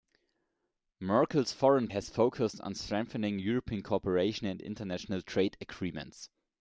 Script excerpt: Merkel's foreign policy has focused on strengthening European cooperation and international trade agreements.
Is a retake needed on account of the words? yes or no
yes